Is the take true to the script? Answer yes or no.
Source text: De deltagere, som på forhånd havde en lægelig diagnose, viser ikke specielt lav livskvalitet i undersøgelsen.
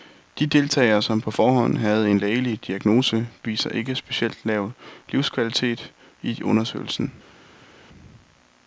yes